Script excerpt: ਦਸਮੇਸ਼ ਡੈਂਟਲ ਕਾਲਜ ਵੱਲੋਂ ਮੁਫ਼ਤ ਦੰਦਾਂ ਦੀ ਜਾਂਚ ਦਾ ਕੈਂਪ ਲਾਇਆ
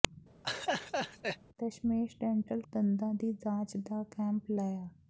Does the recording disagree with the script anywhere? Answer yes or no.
yes